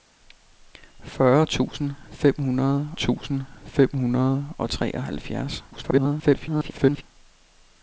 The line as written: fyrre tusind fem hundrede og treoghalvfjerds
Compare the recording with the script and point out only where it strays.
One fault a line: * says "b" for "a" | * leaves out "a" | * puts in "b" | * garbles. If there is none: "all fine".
* puts in "tusind fem hundrede"
* garbles